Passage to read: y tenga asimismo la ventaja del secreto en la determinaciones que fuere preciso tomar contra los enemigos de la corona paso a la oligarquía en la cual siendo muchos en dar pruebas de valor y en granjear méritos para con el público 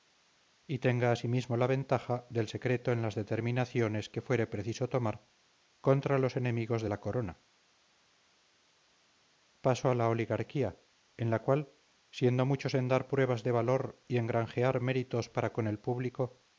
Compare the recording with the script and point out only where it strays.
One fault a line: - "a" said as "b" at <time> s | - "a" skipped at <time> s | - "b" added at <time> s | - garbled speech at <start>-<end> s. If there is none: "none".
- "la" said as "las" at 3.0 s